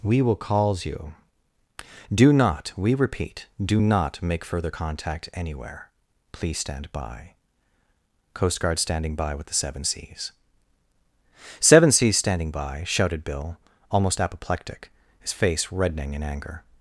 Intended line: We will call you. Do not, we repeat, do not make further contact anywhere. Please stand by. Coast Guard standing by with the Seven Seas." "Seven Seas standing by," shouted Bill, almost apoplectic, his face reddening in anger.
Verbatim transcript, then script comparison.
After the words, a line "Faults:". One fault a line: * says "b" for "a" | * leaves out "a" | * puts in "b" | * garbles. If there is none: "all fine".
We will calls you. Do not, we repeat, do not make further contact anywhere. Please stand by. Coast Guard standing by with the Seven Seas." "Seven Seas standing by," shouted Bill, almost apoplectic, his face reddening in anger.
Faults:
* says "calls" for "call"